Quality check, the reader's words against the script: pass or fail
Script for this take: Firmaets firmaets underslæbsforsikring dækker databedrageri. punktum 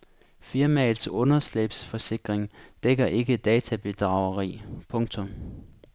fail